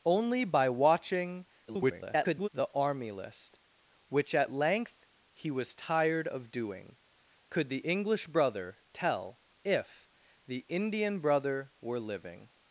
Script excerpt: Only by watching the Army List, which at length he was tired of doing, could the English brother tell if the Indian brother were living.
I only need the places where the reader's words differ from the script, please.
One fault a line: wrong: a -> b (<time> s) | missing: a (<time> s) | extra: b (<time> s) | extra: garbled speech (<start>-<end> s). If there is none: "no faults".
extra: garbled speech (1.7-2.5 s)